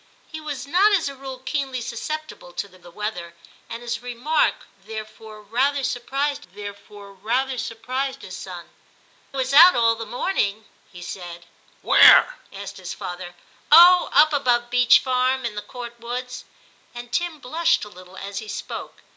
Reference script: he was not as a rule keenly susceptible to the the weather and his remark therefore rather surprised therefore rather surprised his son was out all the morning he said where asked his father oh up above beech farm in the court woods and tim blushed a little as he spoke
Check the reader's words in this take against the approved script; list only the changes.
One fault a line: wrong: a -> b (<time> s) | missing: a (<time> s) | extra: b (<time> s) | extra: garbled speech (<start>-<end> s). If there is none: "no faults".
no faults